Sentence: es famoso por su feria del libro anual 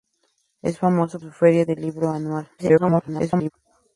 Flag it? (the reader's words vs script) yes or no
yes